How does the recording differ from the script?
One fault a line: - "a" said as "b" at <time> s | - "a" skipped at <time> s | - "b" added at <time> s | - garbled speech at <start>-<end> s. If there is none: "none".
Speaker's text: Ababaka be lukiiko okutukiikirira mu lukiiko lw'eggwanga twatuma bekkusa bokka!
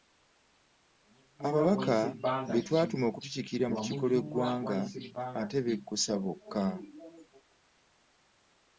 - "lukiiko" said as "twatuma" at 2.7 s
- "twatuma" said as "ate" at 5.4 s